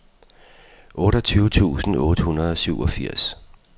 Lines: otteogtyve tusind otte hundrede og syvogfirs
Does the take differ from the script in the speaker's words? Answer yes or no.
no